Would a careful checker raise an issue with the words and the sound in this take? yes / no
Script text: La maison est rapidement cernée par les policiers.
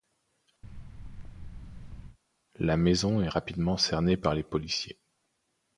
yes